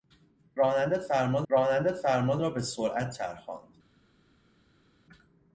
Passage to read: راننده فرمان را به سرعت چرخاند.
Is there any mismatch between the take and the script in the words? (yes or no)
yes